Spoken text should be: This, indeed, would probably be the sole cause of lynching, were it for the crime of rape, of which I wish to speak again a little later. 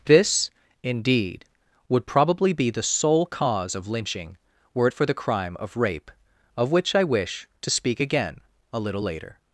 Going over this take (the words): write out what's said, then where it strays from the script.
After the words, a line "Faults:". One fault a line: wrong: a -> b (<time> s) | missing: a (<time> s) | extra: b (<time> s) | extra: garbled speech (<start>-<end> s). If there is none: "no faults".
This, indeed, would probably be the sole cause of lynching, were it for the crime of rape, of which I wish to speak again a little later.
Faults:
no faults